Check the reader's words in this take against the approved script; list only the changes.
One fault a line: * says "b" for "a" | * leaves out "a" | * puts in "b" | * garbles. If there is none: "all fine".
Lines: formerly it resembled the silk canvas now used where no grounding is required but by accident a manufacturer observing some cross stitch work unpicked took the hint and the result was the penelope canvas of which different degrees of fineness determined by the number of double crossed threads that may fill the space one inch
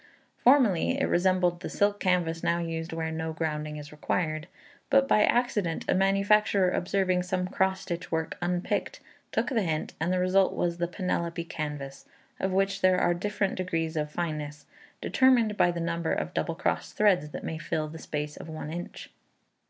* puts in "there are"
* puts in "of"